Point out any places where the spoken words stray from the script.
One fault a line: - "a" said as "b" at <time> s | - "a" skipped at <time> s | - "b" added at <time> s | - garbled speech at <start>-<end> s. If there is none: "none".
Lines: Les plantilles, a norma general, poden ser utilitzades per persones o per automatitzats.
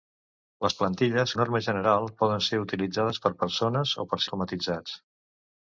none